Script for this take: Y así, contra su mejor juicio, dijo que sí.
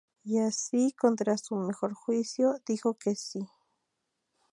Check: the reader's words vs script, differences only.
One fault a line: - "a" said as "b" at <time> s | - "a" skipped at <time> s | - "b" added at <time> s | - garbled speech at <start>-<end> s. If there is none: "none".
none